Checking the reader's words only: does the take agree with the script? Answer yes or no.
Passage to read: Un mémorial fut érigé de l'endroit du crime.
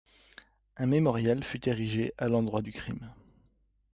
no